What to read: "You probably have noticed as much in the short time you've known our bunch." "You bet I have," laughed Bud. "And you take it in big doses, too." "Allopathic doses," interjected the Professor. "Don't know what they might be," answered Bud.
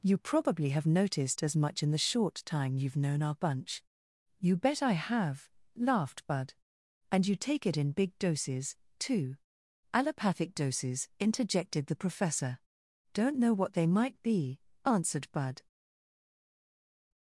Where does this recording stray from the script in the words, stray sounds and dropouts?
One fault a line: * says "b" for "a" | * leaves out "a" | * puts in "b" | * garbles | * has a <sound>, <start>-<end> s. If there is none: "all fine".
all fine